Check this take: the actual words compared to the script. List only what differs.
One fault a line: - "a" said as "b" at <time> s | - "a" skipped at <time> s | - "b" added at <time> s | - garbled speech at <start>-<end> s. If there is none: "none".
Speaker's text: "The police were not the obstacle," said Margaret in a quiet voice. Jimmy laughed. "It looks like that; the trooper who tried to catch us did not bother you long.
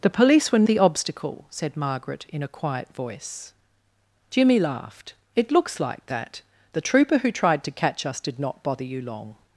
- "not" skipped at 0.7 s